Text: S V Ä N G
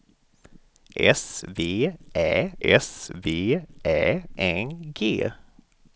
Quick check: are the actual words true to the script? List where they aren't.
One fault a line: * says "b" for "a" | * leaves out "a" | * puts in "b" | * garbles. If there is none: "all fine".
* puts in "s V Ä"